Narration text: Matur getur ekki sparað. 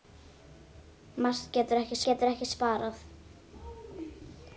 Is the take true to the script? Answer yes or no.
no